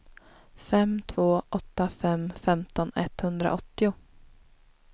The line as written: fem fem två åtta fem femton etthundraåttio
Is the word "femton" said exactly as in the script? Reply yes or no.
yes